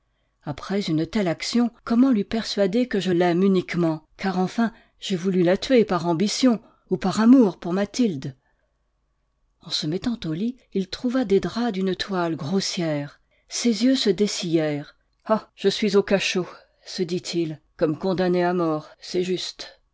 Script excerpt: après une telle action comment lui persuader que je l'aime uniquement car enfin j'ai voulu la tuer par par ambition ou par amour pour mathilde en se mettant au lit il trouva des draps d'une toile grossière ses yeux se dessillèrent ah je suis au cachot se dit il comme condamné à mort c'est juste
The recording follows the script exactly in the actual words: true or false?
false